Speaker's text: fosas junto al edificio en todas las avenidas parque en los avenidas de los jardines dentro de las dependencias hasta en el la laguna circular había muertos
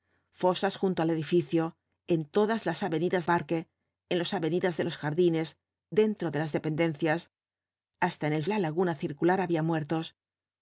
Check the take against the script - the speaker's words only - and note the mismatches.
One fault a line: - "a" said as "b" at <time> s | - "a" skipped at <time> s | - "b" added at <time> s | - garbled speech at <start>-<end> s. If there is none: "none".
none